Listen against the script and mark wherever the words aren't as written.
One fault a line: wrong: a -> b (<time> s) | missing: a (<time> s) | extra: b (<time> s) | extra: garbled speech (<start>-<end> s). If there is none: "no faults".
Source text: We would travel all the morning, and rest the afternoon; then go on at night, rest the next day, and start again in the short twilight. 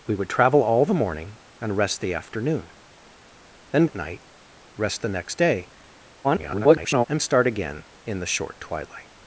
missing: go on (3.9 s)
extra: garbled speech (6.2-7.1 s)